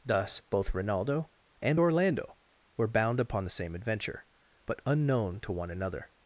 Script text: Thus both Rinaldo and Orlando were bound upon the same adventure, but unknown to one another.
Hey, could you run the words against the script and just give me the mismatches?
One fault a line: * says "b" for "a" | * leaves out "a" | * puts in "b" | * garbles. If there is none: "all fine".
all fine